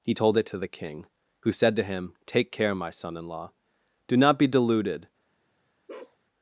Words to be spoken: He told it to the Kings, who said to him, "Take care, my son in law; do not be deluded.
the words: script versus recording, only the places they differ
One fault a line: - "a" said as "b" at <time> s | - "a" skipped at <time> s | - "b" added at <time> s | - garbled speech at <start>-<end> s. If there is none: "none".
- "Kings" said as "King" at 0.7 s